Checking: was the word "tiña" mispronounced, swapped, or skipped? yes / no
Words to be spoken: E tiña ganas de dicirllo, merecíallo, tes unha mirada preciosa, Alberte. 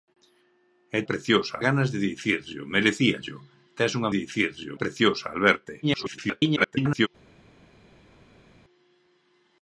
yes